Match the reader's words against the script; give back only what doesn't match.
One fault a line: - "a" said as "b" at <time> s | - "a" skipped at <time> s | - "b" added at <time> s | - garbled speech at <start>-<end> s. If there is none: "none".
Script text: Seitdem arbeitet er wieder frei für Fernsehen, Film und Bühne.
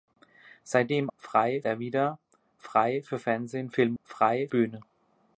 - "arbeitet" said as "frei" at 1.2 s
- "und" said as "frei" at 4.0 s